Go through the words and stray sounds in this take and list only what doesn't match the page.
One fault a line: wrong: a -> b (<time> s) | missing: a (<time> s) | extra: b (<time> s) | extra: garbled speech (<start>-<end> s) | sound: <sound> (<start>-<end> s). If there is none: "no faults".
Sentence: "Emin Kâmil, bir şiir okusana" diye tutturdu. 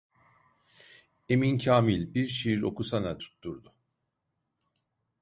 missing: diye (3.2 s)